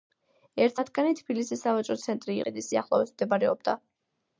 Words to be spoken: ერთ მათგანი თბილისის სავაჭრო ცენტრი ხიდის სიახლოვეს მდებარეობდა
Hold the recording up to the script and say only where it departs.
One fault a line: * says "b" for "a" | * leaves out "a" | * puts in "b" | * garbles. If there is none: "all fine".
all fine